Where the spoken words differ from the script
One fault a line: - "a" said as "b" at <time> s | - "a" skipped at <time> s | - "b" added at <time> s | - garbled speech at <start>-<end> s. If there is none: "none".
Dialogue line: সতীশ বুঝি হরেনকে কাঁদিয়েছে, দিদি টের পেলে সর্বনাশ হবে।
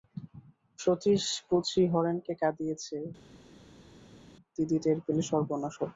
none